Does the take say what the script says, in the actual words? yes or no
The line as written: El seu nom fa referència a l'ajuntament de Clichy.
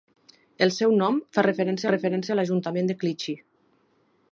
no